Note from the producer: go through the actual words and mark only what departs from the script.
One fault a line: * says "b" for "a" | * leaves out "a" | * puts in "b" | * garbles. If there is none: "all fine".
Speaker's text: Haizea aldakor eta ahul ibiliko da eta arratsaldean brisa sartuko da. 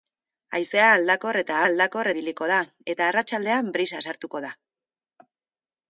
* says "aldakor" for "ahul"